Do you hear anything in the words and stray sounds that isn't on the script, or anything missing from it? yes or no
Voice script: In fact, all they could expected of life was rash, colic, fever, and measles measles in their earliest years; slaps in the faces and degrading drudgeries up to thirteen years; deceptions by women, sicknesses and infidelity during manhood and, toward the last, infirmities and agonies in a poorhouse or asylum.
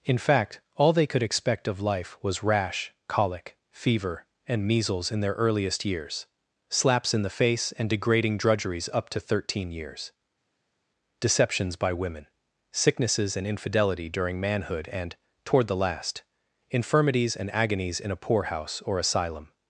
yes